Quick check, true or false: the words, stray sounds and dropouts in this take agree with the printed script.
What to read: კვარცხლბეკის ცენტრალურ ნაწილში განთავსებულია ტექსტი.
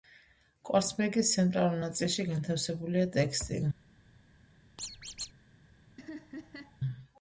false